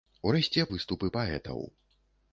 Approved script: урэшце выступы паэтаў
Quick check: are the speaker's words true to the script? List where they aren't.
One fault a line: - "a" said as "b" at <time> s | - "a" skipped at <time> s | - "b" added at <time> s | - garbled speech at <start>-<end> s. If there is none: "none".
none